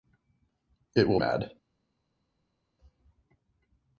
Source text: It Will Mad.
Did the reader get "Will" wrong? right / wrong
right